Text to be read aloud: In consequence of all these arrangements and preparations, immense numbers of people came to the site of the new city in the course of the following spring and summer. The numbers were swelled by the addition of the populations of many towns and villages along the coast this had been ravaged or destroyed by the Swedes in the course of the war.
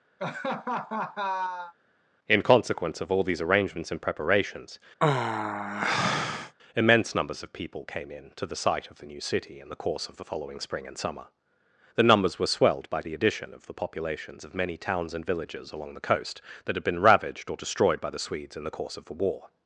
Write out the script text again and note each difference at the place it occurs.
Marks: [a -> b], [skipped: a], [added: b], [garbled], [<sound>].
[laugh] In consequence of all these arrangements and preparations, [sigh] immense numbers of people came [added: in] to the site of the new city in the course of the following spring and summer. The numbers were swelled by the addition of the populations of many towns and villages along the coast [this -> that] had been ravaged or destroyed by the Swedes in the course of the war.